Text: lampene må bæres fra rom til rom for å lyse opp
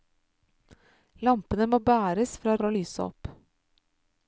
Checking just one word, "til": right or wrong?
wrong